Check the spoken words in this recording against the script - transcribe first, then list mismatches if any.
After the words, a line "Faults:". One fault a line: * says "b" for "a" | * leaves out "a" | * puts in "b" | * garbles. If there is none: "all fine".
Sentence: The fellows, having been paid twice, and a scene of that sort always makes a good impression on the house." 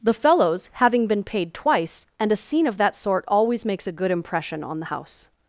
The fellows, having been paid twice, and a scene of that sort always makes a good impression on the house."
Faults:
all fine